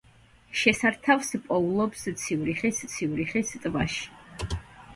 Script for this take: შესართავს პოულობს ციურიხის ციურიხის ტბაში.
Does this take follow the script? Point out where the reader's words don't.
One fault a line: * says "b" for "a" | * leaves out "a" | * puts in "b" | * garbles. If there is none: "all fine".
all fine